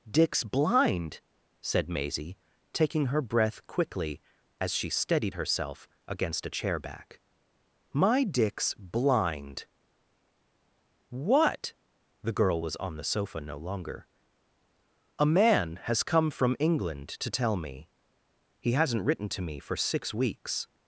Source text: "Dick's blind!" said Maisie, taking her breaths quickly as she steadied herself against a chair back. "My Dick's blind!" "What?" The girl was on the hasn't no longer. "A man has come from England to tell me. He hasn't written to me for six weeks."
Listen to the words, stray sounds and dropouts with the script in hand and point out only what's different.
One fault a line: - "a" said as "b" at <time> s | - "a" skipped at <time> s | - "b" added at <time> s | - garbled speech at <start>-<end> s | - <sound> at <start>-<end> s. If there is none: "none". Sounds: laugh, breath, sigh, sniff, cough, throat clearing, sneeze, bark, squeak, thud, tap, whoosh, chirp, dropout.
- "breaths" said as "breath" at 3.2 s
- "hasn't" said as "sofa" at 13.0 s